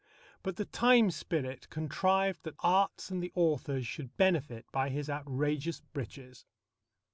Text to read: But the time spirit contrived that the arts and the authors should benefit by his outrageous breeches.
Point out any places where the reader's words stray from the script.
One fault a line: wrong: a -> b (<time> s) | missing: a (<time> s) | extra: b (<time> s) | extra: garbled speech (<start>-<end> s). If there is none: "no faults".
missing: the (2.6 s)